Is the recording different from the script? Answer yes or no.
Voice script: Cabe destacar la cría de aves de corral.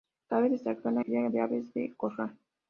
no